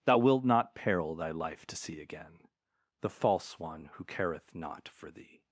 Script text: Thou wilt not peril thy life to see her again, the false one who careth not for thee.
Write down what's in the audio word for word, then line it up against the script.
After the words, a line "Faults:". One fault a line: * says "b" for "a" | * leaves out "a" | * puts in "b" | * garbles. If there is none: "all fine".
Thou wilt not peril thy life to see again, the false one who careth not for thee.
Faults:
* leaves out "her"